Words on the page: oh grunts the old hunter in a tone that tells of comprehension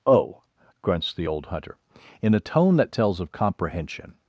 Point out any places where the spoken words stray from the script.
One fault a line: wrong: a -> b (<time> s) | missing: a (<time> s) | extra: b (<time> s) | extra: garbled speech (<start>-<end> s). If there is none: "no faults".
no faults